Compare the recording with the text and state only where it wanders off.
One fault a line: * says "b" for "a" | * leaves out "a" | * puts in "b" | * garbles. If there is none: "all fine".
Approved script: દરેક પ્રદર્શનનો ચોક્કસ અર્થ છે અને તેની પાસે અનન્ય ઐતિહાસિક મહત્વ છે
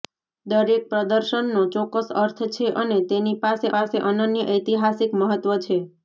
* puts in "પાસે"